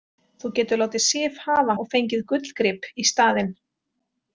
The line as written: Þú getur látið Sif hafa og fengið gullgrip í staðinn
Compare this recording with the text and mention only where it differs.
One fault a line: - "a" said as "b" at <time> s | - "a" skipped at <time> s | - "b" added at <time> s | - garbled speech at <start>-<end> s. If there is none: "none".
none